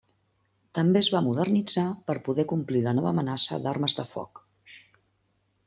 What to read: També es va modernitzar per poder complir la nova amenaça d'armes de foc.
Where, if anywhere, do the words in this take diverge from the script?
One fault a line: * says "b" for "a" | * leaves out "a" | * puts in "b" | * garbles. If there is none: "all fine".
all fine